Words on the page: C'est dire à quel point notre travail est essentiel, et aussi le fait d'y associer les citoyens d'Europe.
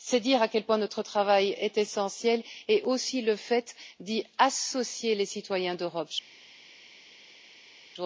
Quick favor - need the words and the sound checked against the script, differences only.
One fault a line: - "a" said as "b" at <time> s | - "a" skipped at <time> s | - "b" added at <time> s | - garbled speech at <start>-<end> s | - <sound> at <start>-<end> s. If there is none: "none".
none